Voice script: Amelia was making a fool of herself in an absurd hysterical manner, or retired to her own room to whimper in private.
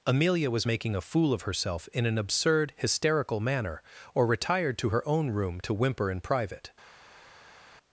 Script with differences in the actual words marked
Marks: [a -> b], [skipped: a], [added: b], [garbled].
Amelia was making a fool of herself in an absurd hysterical manner, or retired to her own room to whimper in private.